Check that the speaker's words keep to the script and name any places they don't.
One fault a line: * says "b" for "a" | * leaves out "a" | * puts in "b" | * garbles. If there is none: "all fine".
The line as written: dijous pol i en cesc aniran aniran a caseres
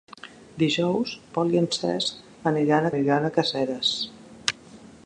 all fine